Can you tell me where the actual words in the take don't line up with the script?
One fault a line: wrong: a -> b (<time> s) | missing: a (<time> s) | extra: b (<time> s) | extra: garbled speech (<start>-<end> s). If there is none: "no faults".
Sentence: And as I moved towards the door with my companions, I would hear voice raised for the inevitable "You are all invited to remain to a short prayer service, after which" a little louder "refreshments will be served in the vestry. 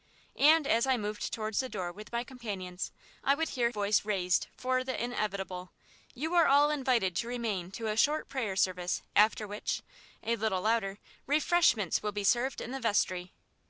no faults